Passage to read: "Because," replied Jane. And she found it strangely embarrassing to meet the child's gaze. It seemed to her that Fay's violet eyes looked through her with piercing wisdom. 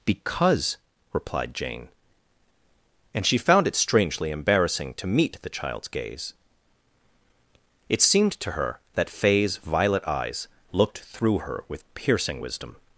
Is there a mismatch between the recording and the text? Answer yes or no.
no